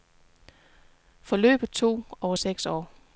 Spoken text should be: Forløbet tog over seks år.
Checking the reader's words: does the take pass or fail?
pass